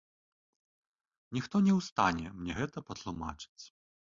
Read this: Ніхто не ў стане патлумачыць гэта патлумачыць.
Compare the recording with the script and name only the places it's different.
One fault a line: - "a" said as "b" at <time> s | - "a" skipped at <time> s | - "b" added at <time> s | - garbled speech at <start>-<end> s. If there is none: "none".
- "патлумачыць" said as "мне" at 2.4 s